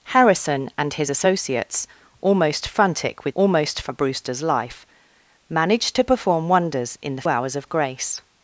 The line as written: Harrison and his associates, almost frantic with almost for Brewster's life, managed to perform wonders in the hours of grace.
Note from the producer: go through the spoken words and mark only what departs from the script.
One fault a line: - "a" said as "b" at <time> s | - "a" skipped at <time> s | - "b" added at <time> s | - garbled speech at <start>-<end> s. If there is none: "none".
none